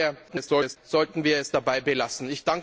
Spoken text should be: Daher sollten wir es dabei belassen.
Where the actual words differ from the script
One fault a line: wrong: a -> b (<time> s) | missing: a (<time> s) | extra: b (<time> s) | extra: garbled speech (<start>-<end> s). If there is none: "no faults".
extra: garbled speech (0.3-0.8 s)